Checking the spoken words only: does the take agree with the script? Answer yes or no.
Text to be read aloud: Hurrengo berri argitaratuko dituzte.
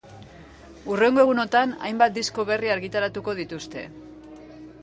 no